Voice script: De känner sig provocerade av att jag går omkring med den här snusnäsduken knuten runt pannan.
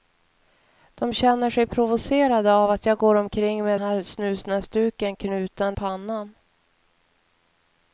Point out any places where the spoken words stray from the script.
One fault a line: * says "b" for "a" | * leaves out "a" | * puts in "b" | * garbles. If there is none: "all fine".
* leaves out "den"
* leaves out "runt"